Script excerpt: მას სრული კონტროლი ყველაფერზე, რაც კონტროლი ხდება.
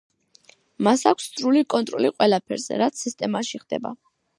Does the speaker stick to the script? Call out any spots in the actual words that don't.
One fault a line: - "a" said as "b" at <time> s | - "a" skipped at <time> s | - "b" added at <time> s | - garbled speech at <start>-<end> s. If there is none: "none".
- "აქვს" added at 1.1 s
- "კონტროლი" said as "სისტემაში" at 3.1 s